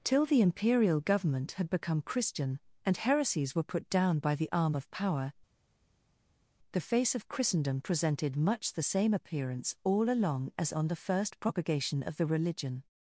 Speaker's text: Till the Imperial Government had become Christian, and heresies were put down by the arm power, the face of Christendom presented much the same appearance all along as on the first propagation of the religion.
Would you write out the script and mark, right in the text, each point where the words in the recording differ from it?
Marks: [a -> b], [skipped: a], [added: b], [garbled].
Till the Imperial Government had become Christian, and heresies were put down by the arm [added: of] power, the face of Christendom presented much the same appearance all along as on the first propagation of the religion.